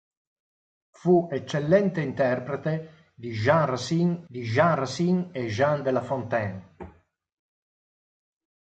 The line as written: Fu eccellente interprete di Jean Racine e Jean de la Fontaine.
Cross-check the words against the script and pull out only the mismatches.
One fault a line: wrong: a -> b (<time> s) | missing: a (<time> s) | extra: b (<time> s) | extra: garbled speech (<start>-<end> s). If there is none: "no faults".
extra: di Jean Racine (4.2 s)